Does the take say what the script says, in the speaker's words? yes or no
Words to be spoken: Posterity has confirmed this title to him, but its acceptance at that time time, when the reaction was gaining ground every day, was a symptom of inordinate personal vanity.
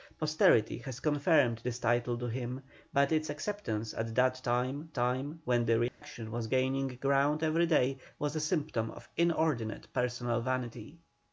yes